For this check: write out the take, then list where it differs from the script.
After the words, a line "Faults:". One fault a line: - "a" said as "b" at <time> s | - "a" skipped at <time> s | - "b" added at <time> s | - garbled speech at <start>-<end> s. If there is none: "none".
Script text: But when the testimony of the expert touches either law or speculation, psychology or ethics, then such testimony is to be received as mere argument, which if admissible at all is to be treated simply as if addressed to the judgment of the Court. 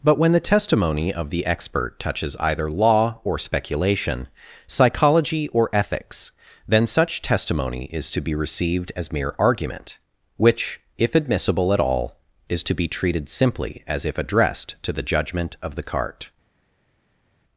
But when the testimony of the expert touches either law or speculation, psychology or ethics, then such testimony is to be received as mere argument, which if admissible at all is to be treated simply as if addressed to the judgment of the Cart.
Faults:
- "Court" said as "Cart" at 15.8 s